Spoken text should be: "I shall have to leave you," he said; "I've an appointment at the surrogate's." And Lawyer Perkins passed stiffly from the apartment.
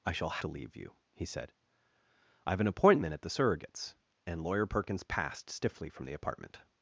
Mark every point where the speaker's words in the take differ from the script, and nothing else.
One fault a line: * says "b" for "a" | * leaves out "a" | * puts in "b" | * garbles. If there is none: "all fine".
* leaves out "have"